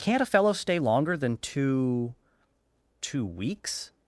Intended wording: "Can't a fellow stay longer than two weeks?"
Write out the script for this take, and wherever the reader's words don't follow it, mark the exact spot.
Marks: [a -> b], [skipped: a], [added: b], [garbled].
"Can't a fellow stay longer than two [added: two] weeks?"